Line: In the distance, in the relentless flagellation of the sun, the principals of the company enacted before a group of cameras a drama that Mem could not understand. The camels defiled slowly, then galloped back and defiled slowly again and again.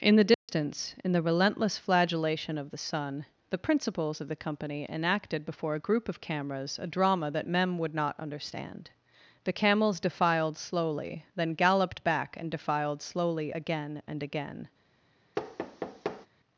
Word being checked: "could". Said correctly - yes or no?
no